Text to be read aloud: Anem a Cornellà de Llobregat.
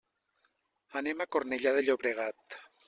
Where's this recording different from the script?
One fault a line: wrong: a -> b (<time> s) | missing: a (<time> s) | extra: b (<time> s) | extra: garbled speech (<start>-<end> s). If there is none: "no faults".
no faults